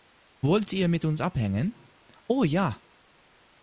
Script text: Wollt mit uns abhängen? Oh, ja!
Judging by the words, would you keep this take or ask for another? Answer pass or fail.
fail